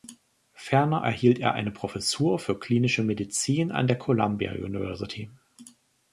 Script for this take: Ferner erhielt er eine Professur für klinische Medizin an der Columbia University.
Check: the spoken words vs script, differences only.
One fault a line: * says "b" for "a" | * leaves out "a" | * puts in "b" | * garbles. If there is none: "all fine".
all fine